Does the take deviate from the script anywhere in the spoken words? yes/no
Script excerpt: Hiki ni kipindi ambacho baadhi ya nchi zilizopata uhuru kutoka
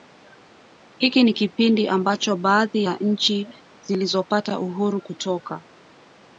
no